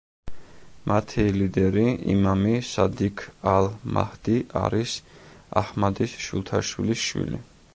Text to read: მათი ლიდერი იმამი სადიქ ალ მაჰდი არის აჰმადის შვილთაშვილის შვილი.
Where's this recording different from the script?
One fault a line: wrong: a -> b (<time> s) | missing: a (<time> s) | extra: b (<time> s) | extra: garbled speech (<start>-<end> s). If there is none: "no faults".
no faults